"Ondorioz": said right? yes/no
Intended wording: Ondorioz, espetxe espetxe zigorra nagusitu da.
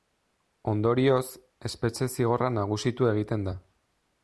yes